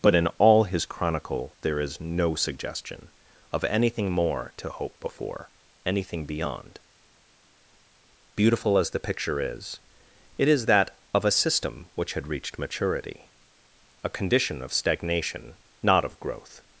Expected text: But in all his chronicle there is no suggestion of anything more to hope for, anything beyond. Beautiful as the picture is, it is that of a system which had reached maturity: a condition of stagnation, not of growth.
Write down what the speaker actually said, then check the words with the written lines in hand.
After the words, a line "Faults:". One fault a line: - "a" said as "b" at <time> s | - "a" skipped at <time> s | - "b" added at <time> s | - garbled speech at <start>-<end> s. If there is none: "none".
But in all his chronicle there is no suggestion of anything more to hope before, anything beyond. Beautiful as the picture is, it is that of a system which had reached maturity: a condition of stagnation, not of growth.
Faults:
- "for" said as "before" at 5.0 s